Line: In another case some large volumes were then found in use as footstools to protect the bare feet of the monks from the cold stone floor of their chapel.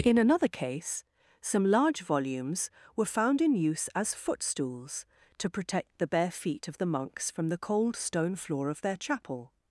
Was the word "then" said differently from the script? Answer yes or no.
yes